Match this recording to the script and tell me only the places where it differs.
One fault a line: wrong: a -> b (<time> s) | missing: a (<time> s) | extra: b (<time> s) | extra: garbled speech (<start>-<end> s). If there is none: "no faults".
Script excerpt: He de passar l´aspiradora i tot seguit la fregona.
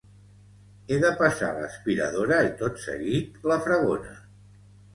no faults